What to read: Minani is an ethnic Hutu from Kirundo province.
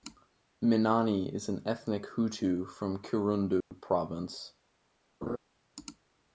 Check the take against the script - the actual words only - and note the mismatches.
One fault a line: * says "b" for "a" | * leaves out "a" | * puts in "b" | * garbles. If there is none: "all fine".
all fine